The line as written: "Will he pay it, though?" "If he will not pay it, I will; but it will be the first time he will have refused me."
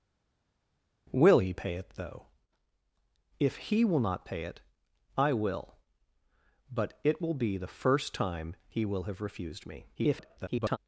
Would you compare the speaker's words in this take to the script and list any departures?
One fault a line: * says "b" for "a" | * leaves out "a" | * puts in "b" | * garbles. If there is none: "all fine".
* garbles